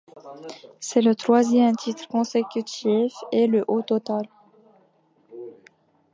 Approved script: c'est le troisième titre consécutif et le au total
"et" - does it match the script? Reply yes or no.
yes